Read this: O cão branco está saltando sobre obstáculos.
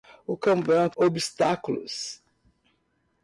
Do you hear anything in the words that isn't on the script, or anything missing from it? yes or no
yes